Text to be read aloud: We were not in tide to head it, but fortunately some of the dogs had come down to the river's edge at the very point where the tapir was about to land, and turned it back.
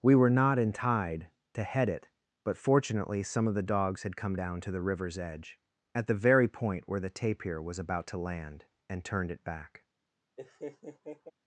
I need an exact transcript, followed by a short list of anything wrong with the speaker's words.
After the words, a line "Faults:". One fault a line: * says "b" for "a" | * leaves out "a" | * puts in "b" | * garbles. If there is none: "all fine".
We were not in tide to head it, but fortunately some of the dogs had come down to the river's edge at the very point where the tapir was about to land, and turned it back.
Faults:
all fine